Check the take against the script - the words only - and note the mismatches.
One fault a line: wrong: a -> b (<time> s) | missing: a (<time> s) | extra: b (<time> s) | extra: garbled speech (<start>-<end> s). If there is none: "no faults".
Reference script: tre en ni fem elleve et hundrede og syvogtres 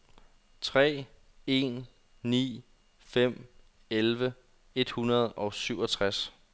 no faults